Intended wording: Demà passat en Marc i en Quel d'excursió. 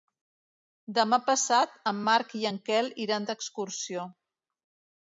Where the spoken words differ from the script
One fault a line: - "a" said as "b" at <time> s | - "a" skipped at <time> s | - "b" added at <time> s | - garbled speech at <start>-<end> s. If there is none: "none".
- "iran" added at 3.1 s